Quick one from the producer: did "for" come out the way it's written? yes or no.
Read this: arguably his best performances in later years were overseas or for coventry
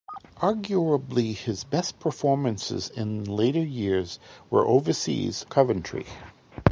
no